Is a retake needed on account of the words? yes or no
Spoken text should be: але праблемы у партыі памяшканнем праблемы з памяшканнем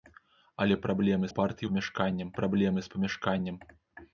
no